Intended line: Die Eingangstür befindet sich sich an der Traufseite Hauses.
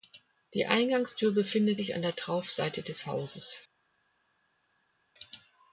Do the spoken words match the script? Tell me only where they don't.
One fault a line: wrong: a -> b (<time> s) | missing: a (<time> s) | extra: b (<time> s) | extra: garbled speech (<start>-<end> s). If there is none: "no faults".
missing: sich (1.9 s)
extra: des (2.8 s)